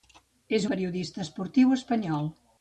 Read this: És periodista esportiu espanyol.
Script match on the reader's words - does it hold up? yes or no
yes